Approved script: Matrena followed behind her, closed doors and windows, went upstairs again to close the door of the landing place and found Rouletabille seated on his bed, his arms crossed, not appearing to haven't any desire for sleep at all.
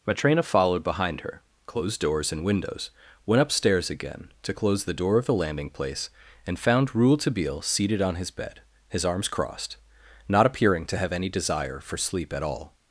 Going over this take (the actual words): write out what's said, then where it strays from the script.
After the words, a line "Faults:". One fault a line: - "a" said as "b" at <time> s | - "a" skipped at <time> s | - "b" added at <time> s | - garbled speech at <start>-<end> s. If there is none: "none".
Matrena followed behind her, closed doors and windows, went upstairs again to close the door of the landing place and found Rouletabille seated on his bed, his arms crossed, not appearing to have any desire for sleep at all.
Faults:
- "haven't" said as "have" at 11.0 s